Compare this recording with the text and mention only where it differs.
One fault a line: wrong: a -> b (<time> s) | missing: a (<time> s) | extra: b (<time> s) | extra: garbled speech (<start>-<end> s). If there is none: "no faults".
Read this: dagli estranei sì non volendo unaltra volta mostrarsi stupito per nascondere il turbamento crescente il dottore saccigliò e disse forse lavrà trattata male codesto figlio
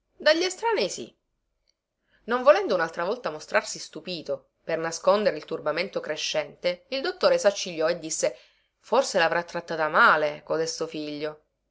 no faults